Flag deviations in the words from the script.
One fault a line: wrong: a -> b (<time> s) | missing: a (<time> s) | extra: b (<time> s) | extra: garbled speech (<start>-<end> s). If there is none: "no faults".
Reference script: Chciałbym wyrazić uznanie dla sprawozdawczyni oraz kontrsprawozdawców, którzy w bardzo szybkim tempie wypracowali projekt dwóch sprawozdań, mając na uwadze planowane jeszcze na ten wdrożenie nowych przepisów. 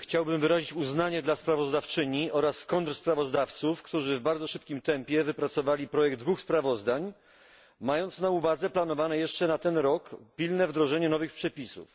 extra: rok pilne (9.8 s)